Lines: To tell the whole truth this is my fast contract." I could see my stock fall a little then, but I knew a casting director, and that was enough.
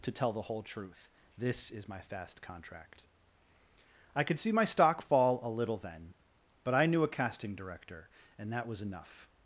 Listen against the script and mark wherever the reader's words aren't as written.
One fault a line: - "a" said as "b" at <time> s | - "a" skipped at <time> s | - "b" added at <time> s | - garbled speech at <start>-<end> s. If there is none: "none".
none